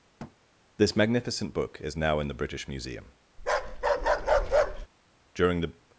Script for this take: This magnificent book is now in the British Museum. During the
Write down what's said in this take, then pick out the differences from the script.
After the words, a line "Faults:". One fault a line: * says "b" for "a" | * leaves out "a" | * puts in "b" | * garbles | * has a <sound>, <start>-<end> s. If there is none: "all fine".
This magnificent book is now in the British Museum. During the
Faults:
* has a thud, 0.2-0.4 s
* has a bark, 3.4-4.9 s